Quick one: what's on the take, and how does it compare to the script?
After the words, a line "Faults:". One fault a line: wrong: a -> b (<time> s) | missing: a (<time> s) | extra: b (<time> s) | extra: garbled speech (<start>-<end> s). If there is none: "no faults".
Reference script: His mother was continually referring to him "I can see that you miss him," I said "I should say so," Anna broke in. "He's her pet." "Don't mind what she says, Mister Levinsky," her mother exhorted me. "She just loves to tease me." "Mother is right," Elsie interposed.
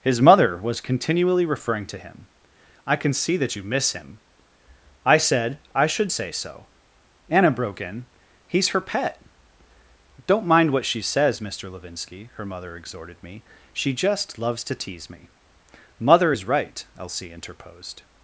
His mother was continually referring to him "I can see that you miss him," I said "I should say so," Anna broke in. "He's her pet." "Don't mind what she says, Mister Levinsky," her mother exhorted me. "She just loves to tease me." "Mother is right," Elsie interposed.
Faults:
no faults